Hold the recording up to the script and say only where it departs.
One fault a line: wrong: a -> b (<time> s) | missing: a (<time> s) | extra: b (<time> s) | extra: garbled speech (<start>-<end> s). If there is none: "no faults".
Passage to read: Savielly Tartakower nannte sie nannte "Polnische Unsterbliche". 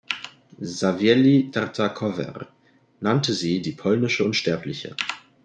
wrong: nannte -> die (3.6 s)